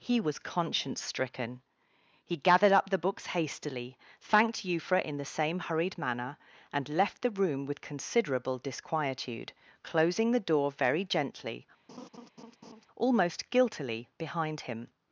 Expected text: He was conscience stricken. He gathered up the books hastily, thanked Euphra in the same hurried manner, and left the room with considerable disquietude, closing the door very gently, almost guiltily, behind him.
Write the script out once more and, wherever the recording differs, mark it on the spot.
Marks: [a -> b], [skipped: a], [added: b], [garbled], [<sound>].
He was conscience stricken. He gathered up the books hastily, thanked Euphra in the same hurried manner, and left the room with considerable disquietude, closing the door very gently, [laugh] almost guiltily, behind him.